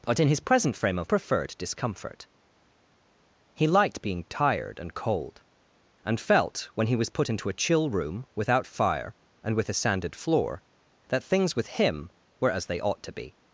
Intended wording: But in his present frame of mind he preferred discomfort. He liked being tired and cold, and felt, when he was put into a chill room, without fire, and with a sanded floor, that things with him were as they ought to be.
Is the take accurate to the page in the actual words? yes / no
no